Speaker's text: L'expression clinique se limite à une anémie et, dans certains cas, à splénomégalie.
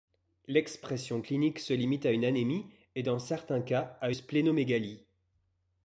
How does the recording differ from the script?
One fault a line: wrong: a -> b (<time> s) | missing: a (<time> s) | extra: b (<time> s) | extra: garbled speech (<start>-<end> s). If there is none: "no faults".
no faults